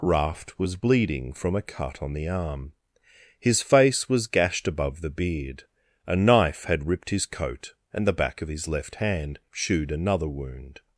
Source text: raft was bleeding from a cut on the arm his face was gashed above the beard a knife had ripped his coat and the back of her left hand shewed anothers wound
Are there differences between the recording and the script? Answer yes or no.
yes